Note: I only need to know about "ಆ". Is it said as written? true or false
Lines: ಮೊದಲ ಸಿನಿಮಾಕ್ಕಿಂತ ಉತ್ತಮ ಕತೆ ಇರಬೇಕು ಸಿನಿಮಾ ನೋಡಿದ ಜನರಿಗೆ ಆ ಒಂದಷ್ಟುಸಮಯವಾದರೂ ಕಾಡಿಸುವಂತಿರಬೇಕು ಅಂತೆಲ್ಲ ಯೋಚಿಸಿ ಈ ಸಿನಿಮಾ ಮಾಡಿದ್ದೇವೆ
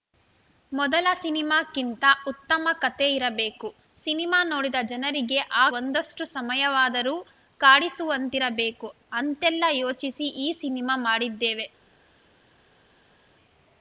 true